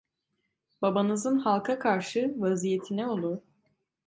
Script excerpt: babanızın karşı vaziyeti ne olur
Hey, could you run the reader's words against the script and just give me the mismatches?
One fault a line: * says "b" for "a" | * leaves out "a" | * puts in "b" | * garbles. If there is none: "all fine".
* puts in "halka"